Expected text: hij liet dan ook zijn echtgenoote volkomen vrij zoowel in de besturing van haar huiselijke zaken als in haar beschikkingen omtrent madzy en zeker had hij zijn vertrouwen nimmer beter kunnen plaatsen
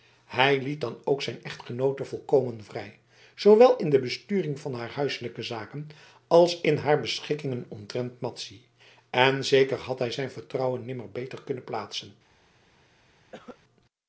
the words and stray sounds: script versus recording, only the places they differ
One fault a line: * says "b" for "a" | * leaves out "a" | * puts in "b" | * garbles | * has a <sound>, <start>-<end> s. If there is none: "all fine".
* has a cough, 13.3-13.6 s